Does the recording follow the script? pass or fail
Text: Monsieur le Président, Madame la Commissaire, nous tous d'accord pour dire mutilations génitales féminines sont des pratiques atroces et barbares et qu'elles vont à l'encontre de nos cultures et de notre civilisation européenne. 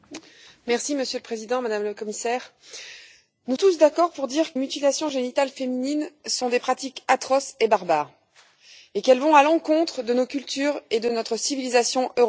pass